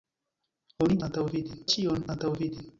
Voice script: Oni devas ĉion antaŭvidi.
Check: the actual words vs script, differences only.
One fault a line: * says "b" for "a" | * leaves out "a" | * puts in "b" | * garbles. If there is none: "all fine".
* says "antaŭvidi" for "devas"